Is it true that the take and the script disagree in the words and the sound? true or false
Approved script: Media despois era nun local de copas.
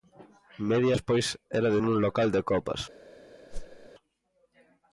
true